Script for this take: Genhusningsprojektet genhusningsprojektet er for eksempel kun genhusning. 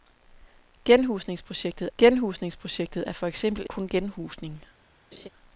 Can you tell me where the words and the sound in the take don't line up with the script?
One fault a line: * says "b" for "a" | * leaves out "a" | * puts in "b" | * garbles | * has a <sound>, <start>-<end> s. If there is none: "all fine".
* has a laugh, 5.1-5.3 s